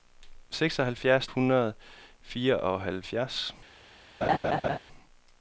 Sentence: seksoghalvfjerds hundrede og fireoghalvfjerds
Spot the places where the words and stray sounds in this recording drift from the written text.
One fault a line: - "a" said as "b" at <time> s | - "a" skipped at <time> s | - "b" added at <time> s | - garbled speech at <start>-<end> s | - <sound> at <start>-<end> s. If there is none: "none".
- laugh at 4.2-4.8 s